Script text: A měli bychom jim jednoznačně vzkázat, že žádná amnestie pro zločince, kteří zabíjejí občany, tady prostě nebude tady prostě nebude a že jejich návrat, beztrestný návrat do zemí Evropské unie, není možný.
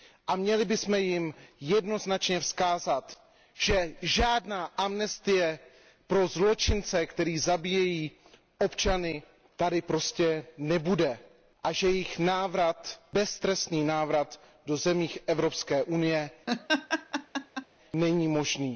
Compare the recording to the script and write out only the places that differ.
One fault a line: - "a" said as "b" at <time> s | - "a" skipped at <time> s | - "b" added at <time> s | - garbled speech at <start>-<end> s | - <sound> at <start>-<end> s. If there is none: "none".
- "tady prostě nebude" skipped at 11.2 s
- laugh at 16.5-17.7 s